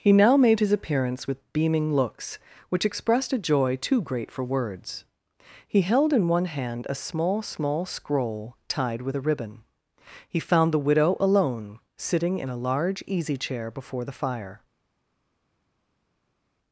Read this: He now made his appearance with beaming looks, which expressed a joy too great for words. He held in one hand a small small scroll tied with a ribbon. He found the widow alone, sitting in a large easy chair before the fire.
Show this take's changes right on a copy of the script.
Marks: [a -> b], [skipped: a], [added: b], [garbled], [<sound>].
He now made his appearance with beaming looks, which expressed a joy too great for words. He held in one hand a small small scroll tied with a ribbon. He found the widow alone, sitting in a large easy chair before the fire.